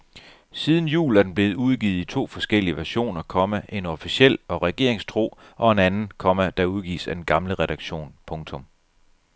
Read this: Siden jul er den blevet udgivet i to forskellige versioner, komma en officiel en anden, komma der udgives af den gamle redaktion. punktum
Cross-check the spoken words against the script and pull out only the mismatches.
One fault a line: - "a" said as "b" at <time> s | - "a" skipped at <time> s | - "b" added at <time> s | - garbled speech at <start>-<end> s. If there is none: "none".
- "og regeringstro og" added at 4.5 s